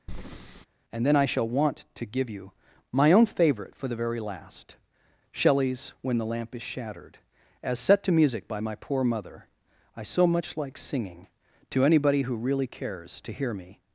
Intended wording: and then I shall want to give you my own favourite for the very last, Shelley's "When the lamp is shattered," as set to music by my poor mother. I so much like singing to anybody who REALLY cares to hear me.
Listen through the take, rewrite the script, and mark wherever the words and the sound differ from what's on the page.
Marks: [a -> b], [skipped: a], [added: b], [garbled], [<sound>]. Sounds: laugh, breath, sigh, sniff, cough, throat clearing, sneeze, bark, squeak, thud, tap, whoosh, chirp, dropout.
[breath] and then I shall want to give you my own favourite for the very last, Shelley's "When the lamp is shattered," as set to music by my poor mother. I so much like singing to anybody who REALLY cares to hear me.